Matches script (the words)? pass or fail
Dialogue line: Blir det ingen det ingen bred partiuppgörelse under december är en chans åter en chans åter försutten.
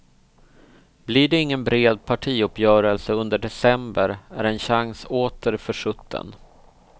fail